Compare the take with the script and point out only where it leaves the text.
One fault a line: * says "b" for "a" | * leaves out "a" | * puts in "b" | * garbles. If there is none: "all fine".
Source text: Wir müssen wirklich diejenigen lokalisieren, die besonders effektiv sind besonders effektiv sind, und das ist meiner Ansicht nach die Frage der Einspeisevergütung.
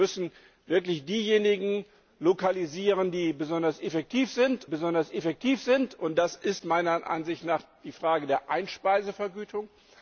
all fine